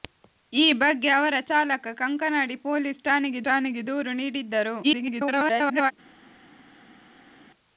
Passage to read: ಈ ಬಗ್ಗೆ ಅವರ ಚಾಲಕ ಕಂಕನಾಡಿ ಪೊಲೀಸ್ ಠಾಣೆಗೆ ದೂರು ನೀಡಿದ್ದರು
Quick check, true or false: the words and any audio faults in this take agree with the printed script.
false